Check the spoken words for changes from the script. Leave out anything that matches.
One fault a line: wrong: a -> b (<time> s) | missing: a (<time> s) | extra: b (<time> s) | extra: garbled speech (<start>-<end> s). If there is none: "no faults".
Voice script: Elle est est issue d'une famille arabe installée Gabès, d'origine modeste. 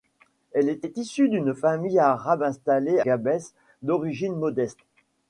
no faults